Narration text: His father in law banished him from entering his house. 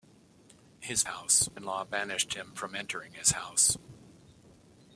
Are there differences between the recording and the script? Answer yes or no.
yes